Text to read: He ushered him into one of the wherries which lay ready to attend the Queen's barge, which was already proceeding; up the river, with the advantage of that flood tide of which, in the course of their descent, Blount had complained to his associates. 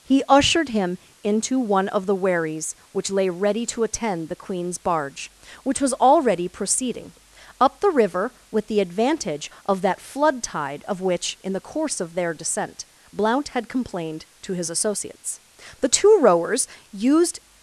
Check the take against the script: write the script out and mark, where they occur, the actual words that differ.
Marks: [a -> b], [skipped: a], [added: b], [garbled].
He ushered him into one of the wherries which lay ready to attend the Queen's barge, which was already proceeding; up the river, with the advantage of that flood tide of which, in the course of their descent, Blount had complained to his associates. [added: The two rowers used]